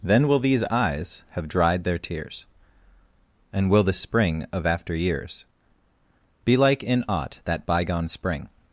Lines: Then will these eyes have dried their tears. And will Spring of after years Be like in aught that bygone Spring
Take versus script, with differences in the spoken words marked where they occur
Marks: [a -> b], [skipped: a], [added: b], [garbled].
Then will these eyes have dried their tears. And will [added: the] Spring of after years Be like in aught that bygone Spring